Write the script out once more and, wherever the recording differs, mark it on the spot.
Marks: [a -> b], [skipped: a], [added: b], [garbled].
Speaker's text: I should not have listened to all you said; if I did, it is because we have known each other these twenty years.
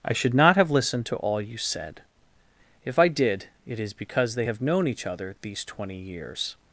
I should not have listened to all you said; if I did, it is because [we -> they] have known each other these twenty years.